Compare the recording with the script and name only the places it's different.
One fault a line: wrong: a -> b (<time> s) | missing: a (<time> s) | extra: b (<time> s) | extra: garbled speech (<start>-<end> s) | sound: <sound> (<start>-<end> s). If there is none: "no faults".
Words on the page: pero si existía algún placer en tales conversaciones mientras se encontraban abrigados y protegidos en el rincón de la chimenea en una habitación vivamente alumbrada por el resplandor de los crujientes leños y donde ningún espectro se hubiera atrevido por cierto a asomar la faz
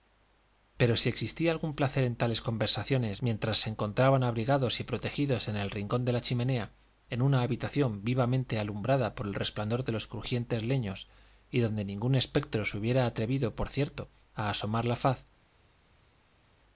no faults